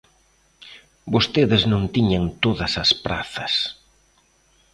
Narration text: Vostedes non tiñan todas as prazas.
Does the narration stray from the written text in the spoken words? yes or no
no